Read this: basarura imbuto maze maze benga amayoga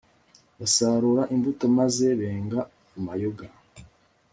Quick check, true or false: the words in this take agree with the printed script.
false